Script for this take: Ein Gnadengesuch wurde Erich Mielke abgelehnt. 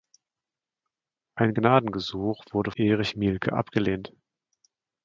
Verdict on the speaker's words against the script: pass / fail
pass